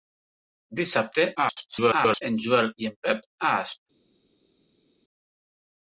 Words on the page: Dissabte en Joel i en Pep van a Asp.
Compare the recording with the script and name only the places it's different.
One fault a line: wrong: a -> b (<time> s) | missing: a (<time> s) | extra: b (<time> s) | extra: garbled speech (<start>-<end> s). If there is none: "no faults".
extra: garbled speech (1.4-2.2 s)
missing: van (3.3 s)